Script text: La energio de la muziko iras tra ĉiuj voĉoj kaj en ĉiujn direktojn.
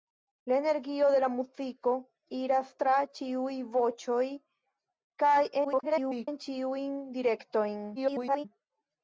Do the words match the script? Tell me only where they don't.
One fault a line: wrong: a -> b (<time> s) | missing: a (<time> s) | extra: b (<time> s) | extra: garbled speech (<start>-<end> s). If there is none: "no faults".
extra: garbled speech (5.6-6.3 s)
extra: garbled speech (8.0-8.5 s)